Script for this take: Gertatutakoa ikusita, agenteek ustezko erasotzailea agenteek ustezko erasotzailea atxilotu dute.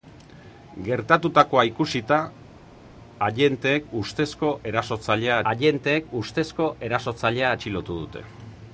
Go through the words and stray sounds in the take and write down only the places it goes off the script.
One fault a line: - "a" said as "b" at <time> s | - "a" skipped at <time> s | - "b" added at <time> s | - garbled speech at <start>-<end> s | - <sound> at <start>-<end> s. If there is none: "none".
none